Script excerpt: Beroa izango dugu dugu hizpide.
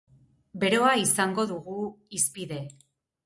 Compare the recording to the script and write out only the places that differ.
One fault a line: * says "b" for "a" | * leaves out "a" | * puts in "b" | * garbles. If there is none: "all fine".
* leaves out "dugu"